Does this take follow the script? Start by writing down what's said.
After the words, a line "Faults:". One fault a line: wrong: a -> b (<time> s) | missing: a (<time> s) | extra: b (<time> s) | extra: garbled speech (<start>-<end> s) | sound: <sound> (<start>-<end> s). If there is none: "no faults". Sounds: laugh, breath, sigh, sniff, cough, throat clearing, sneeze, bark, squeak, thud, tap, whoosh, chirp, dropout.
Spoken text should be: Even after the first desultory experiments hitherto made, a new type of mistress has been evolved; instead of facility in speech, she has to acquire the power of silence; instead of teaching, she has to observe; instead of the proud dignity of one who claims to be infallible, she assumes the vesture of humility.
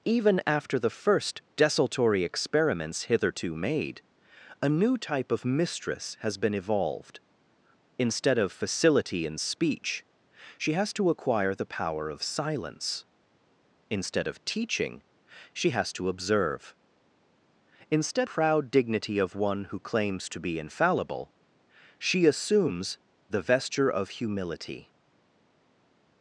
Even after the first desultory experiments hitherto made, a new type of mistress has been evolved; instead of facility in speech, she has to acquire the power of silence; instead of teaching, she has to observe; instead proud dignity of one who claims to be infallible, she assumes the vesture of humility.
Faults:
missing: of the (18.3 s)